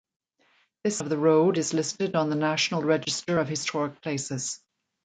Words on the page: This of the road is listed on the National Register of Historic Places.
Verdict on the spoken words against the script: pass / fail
pass